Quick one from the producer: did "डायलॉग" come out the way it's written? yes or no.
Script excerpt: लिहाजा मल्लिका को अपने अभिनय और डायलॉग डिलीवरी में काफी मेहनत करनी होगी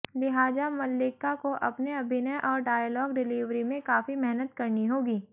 yes